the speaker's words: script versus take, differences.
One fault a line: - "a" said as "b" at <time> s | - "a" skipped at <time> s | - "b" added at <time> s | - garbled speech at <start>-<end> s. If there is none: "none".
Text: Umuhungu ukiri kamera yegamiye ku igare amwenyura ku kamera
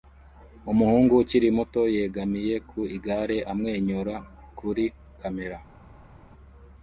- "kamera" said as "muto" at 1.6 s
- "ku" said as "kuri" at 4.6 s